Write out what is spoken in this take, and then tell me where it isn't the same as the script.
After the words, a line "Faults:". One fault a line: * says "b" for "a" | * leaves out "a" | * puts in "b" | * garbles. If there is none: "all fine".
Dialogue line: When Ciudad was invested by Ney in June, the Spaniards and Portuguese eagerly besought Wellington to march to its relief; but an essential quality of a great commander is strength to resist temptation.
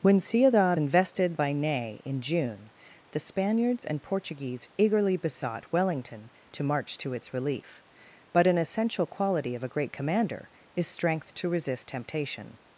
When Ciudad invested by Ney in June, the Spaniards and Portuguese eagerly besought Wellington to march to its relief; but an essential quality of a great commander is strength to resist temptation.
Faults:
* leaves out "was"